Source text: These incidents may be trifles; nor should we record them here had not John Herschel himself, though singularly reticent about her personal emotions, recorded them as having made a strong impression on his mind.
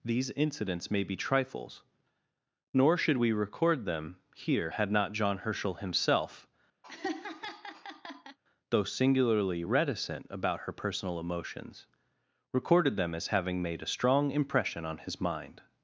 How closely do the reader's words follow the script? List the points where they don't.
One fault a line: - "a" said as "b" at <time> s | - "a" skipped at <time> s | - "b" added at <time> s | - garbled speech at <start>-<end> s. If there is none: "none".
none